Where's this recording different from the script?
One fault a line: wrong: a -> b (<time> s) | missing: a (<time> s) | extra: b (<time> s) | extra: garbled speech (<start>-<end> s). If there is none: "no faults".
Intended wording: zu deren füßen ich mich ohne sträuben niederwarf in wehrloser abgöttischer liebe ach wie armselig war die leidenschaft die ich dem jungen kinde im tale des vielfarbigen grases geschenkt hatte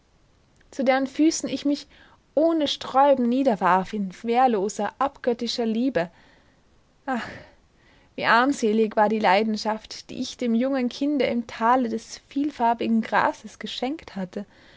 no faults